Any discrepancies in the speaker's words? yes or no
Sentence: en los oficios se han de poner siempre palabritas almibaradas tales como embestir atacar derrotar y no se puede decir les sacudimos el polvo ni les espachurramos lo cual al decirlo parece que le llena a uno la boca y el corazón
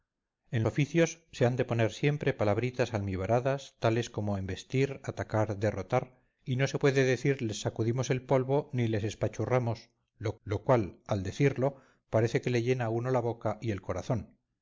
yes